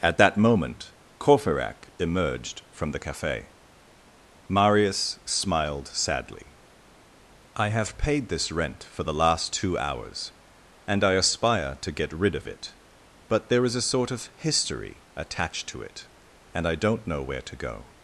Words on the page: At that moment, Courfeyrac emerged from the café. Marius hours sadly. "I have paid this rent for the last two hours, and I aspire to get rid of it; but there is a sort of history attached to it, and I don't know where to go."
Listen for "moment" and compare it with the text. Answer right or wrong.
right